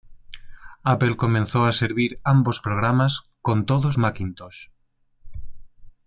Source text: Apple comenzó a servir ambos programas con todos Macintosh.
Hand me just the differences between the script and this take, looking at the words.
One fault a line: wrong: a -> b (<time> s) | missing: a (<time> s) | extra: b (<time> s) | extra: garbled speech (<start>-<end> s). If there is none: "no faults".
no faults